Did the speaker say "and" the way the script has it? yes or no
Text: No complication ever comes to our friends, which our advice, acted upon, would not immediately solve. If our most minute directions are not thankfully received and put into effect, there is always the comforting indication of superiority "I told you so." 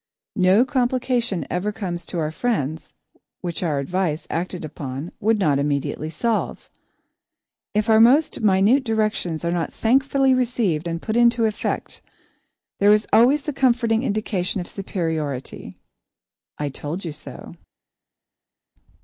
yes